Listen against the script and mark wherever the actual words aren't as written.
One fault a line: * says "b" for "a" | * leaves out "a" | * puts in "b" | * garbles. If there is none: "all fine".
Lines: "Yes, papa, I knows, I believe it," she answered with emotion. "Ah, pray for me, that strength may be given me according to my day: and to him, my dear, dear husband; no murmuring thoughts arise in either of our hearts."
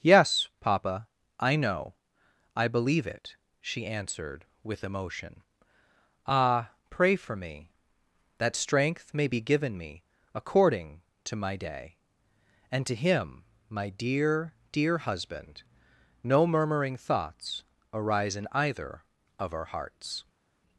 * says "know" for "knows"